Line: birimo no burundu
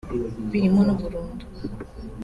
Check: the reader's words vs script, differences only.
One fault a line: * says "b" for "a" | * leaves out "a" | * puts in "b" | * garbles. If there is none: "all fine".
all fine